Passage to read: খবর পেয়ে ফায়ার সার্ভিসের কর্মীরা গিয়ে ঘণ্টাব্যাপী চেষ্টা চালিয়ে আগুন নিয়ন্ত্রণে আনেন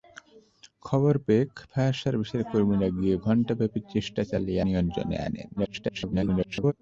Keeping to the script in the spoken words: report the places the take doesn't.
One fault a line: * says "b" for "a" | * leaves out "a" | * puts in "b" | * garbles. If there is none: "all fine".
* leaves out "আগুন"
* garbles